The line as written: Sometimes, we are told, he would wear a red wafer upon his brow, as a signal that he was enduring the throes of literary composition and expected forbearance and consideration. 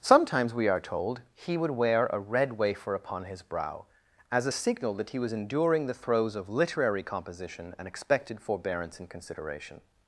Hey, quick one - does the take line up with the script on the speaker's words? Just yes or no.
yes